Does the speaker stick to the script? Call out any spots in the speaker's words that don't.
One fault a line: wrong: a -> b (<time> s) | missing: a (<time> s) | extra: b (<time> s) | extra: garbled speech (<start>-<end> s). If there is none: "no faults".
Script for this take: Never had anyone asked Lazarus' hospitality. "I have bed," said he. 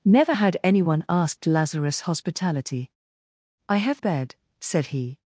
no faults